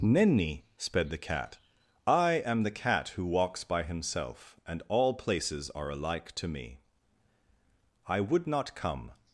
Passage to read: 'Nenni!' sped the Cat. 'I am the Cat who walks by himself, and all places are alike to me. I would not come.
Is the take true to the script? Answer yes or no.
yes